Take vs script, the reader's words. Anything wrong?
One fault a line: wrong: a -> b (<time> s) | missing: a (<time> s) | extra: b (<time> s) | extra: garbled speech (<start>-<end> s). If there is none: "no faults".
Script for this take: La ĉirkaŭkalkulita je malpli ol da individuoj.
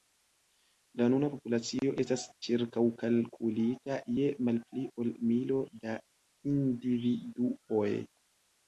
extra: nuna populacio estas (1.1 s)
extra: milo (5.3 s)